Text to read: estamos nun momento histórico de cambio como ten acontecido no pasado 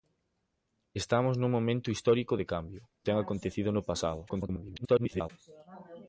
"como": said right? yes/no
no